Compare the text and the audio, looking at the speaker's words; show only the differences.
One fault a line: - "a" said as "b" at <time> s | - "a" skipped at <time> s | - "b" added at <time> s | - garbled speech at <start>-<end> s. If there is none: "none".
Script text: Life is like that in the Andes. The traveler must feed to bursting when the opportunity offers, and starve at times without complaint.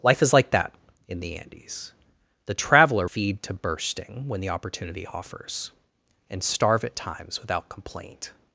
- "must" skipped at 3.1 s